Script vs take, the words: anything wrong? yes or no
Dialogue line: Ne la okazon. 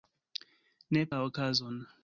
no